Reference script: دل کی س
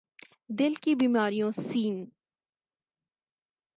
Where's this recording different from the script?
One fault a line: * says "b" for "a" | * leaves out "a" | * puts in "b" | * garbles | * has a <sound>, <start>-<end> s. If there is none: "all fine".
* puts in "بیماریوں"